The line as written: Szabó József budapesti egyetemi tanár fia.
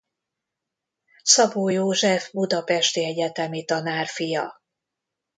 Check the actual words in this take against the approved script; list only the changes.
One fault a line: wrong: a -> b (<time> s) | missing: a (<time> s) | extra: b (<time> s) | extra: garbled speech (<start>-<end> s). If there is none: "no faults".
no faults